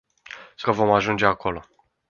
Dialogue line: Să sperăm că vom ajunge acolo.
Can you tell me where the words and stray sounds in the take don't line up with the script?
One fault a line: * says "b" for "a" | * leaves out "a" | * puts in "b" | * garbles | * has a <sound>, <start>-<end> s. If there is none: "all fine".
* leaves out "sperăm"